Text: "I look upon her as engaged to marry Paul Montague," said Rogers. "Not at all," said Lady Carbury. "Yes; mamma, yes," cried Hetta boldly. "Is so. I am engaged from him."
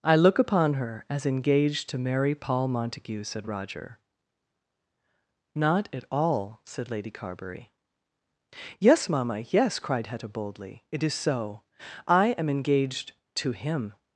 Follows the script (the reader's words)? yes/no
no